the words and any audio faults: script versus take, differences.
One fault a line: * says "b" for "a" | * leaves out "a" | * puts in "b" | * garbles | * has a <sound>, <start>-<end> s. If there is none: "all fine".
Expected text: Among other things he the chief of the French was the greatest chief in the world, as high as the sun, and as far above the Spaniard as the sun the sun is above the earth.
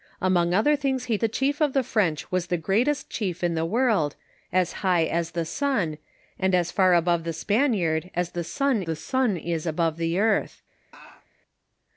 * has a laugh, 10.9-11.3 s